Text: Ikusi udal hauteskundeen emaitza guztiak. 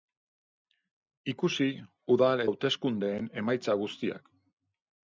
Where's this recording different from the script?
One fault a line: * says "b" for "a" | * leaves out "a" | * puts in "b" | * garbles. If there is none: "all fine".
all fine